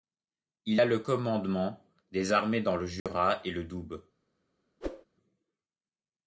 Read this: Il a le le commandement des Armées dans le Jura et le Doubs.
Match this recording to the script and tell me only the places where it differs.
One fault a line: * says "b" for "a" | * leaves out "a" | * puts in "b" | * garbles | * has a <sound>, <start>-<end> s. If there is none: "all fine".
* leaves out "le"
* has a dropout, 3.0-3.1 s
* has a whoosh, 4.8-5.1 s